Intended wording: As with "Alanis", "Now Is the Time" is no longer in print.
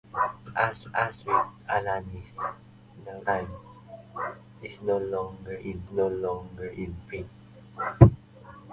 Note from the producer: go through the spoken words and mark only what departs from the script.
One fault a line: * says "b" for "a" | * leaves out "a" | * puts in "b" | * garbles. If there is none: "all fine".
* puts in "as"
* puts in "Time"
* says "no longer in" for "the Time is"